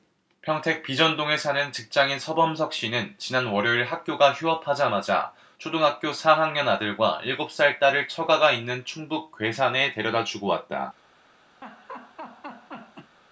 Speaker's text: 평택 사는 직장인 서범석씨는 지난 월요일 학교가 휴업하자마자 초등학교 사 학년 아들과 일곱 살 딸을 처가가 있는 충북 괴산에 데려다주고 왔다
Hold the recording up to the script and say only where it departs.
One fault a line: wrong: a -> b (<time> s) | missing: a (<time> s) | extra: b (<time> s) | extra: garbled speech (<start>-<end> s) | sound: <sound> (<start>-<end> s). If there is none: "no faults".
extra: 비전동에 (0.8 s)
sound: laugh (11.6-13.2 s)